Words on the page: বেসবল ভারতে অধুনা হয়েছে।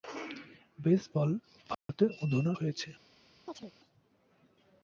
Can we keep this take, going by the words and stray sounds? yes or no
no